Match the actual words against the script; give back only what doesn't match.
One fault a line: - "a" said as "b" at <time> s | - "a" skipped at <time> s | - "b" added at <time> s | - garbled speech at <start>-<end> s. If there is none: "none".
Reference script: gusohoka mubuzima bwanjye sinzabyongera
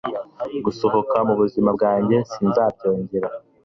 none